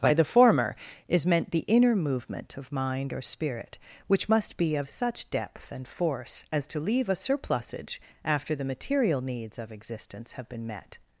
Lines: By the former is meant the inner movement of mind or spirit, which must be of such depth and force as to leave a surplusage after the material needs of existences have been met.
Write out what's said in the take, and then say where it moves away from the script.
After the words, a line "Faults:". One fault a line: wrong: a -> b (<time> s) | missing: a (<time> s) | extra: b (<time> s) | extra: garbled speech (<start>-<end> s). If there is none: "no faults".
By the former is meant the inner movement of mind or spirit, which must be of such depth and force as to leave a surplusage after the material needs of existence have been met.
Faults:
wrong: existences -> existence (9.7 s)